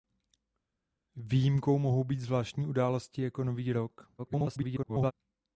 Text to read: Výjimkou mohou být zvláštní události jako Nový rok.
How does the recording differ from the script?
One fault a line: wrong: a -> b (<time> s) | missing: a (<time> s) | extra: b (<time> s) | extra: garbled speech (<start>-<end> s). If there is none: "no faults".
extra: garbled speech (4.2-5.1 s)